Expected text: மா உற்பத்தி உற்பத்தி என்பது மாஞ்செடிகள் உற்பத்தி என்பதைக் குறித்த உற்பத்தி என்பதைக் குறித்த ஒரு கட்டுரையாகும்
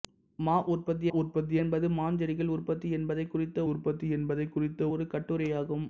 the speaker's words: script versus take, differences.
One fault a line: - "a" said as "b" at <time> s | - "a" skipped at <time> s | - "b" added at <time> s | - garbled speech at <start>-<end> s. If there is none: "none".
none